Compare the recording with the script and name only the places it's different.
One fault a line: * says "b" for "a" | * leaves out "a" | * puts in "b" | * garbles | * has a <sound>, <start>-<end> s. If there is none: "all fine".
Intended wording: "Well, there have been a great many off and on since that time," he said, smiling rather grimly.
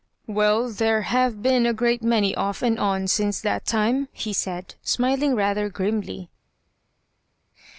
all fine